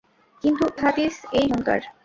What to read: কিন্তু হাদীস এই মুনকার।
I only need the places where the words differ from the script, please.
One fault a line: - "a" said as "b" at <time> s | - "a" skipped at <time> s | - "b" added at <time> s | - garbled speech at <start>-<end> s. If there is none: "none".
none